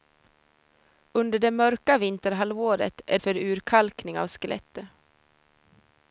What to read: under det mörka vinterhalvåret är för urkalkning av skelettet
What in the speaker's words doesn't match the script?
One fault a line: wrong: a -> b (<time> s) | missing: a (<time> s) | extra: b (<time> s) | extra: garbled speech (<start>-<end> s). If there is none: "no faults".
no faults